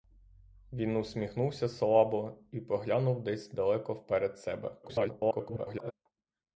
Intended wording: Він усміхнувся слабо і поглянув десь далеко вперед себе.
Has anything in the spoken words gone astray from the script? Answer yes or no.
yes